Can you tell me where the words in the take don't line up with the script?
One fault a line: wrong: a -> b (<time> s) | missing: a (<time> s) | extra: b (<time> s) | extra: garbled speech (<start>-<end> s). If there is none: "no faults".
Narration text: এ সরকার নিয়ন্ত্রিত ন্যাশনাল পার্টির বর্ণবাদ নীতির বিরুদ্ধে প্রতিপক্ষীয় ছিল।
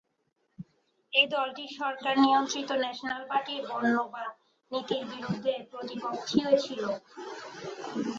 extra: দলটি (1.3 s)